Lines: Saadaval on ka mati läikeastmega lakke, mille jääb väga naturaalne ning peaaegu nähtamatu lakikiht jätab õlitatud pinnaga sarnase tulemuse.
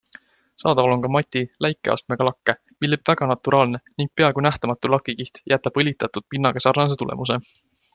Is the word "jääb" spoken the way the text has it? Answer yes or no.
yes